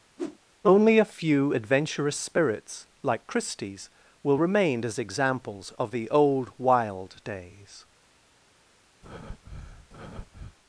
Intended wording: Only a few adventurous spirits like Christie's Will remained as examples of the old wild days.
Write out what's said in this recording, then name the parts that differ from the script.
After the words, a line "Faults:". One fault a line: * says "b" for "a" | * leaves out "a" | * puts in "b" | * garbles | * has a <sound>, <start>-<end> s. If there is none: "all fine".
Only a few adventurous spirits like Christie's Will remain as examples of the old wild days.
Faults:
* has a whoosh, 0.2-0.4 s
* says "remain" for "remained"
* has a breath, 9.0-10.6 s